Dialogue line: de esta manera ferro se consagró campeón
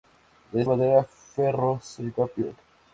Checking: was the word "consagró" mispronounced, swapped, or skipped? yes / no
yes